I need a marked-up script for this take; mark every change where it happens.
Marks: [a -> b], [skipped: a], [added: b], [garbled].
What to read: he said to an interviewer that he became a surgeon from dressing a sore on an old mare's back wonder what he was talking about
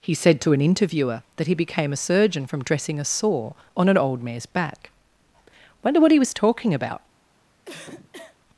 he said to an interviewer that he became a surgeon from dressing a sore on an old mare's back wonder what he was talking about